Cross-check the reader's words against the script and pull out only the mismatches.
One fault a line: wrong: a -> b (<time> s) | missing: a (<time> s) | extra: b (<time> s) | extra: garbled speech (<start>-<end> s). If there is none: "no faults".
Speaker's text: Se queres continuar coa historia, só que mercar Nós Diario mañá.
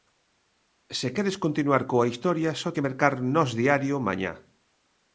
no faults